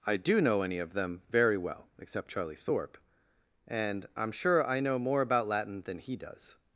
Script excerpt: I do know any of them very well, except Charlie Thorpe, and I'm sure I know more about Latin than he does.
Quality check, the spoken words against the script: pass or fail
pass